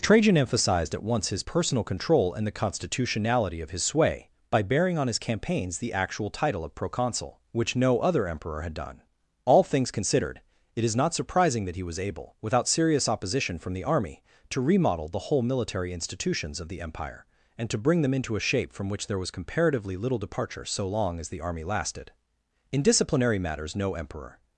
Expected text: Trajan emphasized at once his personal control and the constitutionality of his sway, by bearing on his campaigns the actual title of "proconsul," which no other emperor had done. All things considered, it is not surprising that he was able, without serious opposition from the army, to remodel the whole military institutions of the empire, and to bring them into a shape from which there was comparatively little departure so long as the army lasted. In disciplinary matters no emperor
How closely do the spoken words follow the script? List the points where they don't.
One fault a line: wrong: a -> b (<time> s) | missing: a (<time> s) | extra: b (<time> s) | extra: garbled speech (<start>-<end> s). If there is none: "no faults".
no faults